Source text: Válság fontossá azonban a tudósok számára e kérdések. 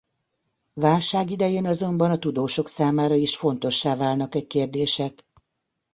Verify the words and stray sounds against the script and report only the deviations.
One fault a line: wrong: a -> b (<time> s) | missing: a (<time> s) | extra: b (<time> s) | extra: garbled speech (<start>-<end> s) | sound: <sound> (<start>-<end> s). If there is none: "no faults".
wrong: fontossá -> idején (1.3 s)
extra: is fontossá válnak (3.1 s)